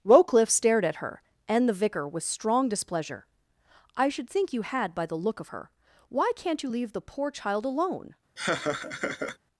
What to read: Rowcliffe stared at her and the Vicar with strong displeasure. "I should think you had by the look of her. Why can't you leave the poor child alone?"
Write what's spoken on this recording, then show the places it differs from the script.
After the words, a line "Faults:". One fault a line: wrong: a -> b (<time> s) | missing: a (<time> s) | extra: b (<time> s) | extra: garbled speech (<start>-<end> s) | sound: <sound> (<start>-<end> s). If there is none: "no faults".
Rowcliffe stared at her and the Vicar with strong displeasure. "I should think you had by the look of her. Why can't you leave the poor child alone?"
Faults:
sound: laugh (8.4-9.4 s)